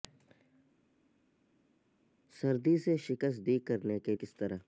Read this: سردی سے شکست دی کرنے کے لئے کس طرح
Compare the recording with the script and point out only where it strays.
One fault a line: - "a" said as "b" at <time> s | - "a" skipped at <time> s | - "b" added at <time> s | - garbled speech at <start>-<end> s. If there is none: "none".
- "لئے" skipped at 4.2 s